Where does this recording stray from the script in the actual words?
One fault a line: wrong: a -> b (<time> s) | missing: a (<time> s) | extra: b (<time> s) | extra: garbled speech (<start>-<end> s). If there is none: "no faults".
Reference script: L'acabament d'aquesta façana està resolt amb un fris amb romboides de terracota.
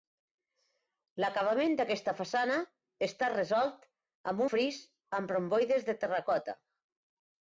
missing: un (4.4 s)